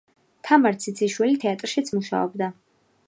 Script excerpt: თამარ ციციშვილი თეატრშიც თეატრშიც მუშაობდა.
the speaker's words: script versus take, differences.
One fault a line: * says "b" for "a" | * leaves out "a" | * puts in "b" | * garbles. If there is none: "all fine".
* leaves out "თეატრშიც"